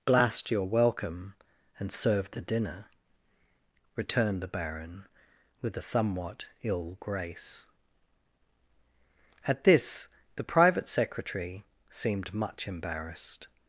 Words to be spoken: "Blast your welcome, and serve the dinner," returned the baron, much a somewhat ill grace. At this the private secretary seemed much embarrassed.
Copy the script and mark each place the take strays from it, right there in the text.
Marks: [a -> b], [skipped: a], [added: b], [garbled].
"Blast your welcome, and serve the dinner," returned the baron, [much -> with] a somewhat ill grace. At this the private secretary seemed much embarrassed.